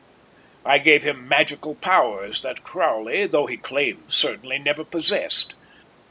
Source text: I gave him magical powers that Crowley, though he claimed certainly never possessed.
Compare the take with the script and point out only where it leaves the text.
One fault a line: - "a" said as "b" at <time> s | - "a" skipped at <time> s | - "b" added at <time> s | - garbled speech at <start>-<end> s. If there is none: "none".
none